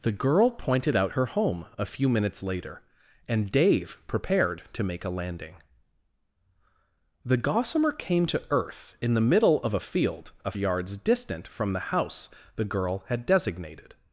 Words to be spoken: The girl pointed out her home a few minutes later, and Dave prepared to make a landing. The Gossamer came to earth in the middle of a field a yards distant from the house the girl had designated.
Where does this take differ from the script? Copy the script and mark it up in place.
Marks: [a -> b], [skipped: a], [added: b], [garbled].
The girl pointed out her home a few minutes later, and Dave prepared to make a landing. The Gossamer came to earth in the middle of a field a yards distant from the house the girl had designated.